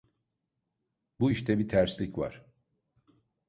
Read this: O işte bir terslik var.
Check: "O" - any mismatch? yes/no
yes